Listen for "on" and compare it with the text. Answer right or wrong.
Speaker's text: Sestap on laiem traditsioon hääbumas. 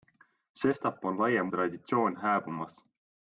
right